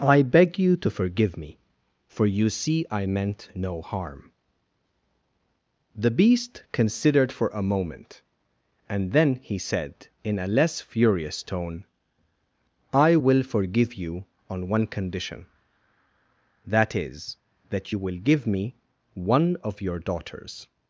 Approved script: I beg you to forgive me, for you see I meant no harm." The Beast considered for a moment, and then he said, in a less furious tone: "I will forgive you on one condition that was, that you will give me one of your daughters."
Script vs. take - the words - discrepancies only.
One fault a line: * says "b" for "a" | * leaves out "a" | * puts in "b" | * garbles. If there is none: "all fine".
* says "is" for "was"